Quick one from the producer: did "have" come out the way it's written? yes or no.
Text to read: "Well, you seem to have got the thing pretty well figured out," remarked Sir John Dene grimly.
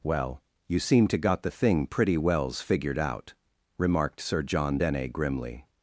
no